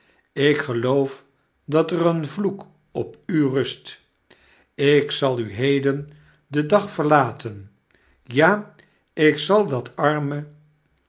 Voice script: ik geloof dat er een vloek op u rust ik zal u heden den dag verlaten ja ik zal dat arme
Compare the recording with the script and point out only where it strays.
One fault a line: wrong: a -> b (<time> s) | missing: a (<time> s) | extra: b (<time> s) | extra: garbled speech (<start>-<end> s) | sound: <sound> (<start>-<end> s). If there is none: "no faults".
no faults